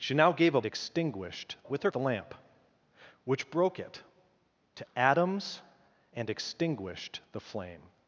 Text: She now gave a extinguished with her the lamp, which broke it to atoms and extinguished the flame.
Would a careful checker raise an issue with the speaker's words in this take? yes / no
no